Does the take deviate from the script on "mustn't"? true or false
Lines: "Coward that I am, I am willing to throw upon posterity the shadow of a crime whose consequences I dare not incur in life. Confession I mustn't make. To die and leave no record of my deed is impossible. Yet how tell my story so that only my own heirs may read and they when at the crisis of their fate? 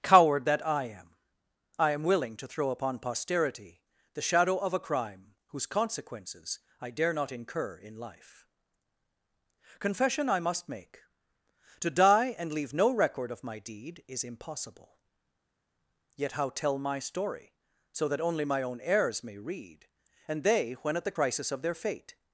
true